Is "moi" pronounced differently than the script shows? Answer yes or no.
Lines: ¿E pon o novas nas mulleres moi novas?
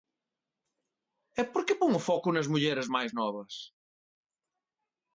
yes